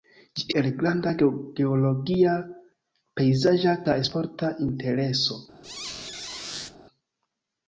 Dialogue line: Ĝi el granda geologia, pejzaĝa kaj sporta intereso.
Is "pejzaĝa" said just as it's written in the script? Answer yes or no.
yes